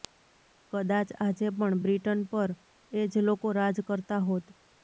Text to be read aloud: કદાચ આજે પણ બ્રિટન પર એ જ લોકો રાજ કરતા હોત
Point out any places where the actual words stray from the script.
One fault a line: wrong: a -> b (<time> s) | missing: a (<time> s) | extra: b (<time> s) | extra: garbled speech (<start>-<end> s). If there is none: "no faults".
no faults